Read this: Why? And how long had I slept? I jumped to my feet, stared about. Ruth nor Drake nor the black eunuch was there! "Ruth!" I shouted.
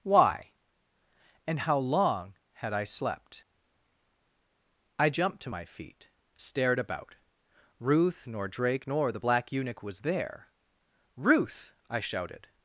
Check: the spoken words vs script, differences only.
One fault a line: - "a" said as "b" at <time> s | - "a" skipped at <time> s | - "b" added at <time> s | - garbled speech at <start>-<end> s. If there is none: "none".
none